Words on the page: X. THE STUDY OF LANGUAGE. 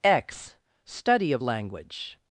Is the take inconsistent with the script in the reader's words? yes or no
yes